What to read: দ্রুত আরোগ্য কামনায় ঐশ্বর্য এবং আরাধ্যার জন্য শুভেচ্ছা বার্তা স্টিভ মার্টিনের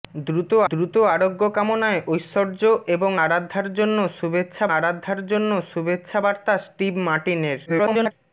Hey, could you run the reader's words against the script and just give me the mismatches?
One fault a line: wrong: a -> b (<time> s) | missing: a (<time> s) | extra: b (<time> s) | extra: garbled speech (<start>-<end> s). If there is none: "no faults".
extra: দ্রুত (0.7 s)
extra: আরাধ্যার জন্য শুভেচ্ছা (4.8 s)
extra: garbled speech (7.7-8.1 s)